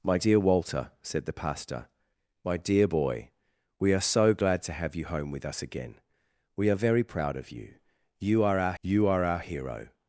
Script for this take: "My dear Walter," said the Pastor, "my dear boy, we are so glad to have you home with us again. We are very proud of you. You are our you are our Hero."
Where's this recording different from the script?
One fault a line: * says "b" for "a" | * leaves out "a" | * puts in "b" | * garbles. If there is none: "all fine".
all fine